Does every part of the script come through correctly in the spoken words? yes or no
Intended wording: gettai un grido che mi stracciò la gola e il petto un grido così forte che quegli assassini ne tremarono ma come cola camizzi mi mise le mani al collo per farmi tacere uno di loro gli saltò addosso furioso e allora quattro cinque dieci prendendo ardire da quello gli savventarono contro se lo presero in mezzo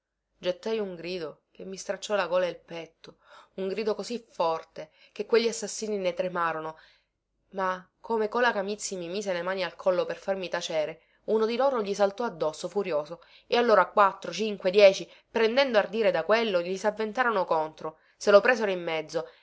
yes